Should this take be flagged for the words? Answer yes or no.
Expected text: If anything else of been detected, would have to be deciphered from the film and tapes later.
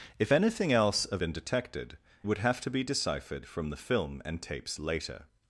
no